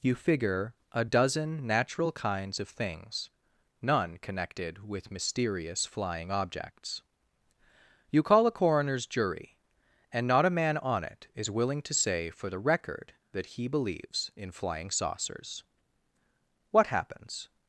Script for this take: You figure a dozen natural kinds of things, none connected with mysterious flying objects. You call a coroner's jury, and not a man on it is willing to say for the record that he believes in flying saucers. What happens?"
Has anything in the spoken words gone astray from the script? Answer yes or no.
no